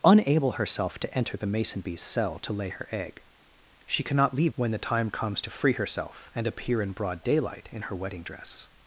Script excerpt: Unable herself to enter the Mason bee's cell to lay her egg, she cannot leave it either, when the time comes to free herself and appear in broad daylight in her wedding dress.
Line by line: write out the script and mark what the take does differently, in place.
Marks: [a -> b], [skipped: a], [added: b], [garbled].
Unable herself to enter the Mason bee's cell to lay her egg, she cannot leave [skipped: it either,] when the time comes to free herself and appear in broad daylight in her wedding dress.